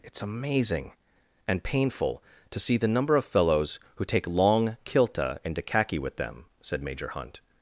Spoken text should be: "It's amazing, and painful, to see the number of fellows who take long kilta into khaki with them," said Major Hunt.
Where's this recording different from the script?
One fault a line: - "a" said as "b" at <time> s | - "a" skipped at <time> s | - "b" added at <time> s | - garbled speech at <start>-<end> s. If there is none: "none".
none